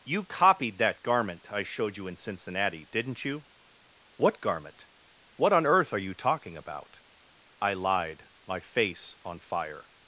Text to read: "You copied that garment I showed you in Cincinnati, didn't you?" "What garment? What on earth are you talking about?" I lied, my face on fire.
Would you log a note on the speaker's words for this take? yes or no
no